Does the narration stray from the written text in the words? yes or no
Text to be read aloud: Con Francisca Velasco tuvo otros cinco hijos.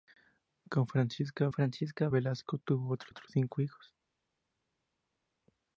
yes